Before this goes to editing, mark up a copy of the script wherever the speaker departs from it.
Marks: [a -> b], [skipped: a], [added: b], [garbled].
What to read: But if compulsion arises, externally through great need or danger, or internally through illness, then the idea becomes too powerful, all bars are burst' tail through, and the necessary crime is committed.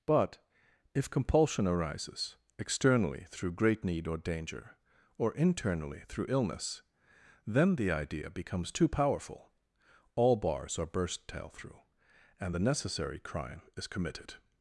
But if compulsion arises, externally through great need or danger, or internally through illness, then the idea becomes too powerful, all bars are burst' tail through, and the necessary crime is committed.